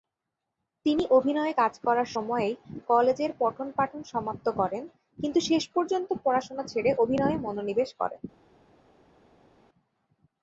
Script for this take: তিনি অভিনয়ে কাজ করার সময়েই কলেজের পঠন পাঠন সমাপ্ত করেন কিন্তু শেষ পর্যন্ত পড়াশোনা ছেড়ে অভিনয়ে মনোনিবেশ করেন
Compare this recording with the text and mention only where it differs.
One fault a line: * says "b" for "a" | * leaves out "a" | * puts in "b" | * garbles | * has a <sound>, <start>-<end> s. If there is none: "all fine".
all fine